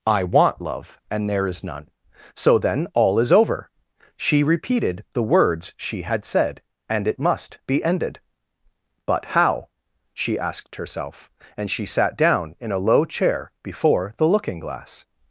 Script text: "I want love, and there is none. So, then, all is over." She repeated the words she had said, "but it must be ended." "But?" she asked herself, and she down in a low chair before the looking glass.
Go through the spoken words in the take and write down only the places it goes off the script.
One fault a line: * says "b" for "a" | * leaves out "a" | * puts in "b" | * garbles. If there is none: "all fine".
* says "and" for "but"
* puts in "how"
* puts in "sat"